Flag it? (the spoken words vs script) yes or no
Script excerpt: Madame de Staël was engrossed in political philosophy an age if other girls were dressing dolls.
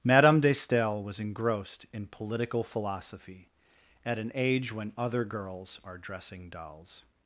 yes